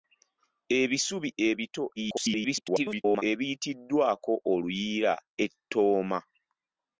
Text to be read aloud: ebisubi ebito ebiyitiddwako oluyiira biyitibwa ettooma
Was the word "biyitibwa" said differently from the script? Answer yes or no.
yes